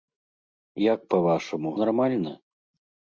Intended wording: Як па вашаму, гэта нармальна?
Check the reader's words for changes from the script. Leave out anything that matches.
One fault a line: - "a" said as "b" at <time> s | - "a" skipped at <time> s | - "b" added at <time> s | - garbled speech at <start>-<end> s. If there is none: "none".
- "гэта" skipped at 1.8 s